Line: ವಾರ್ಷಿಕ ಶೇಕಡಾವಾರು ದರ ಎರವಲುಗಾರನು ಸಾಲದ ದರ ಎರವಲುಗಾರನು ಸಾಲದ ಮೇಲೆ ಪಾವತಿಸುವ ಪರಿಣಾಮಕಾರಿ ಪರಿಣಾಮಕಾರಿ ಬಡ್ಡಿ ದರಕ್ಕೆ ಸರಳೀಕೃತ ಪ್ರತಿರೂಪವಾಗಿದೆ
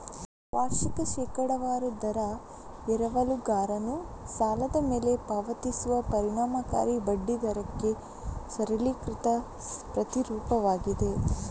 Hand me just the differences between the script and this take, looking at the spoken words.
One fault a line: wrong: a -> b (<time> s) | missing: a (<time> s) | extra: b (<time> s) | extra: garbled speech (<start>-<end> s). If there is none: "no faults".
missing: ದರ ಎರವಲುಗಾರನು ಸಾಲದ (4.8 s)
missing: ಪರಿಣಾಮಕಾರಿ (7.0 s)